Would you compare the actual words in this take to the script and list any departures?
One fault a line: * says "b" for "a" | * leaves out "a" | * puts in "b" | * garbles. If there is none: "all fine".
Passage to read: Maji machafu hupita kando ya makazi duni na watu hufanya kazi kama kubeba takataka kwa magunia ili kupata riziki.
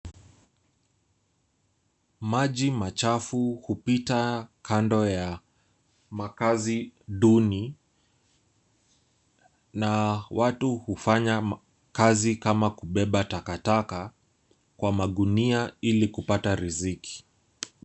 all fine